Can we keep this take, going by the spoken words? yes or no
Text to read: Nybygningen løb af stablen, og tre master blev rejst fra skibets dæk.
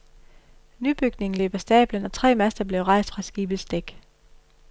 yes